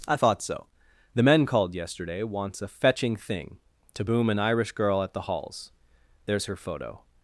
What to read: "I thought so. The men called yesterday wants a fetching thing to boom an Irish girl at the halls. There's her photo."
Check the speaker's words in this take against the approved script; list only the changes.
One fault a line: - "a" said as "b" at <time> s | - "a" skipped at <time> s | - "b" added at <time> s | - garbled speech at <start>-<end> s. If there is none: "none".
none